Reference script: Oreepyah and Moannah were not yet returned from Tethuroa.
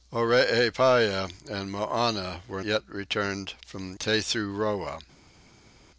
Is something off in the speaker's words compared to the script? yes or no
yes